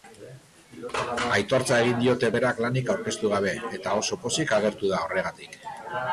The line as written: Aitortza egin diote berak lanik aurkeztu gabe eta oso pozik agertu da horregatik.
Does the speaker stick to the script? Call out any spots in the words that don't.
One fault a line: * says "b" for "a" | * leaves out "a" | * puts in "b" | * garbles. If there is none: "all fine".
all fine